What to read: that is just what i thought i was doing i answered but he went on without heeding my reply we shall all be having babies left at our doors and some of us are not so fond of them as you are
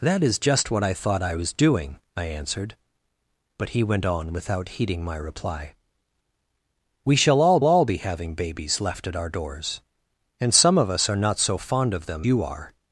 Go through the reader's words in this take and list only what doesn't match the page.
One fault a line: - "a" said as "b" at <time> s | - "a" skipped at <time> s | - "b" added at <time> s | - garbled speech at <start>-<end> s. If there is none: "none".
- "all" added at 7.6 s
- "as" skipped at 12.3 s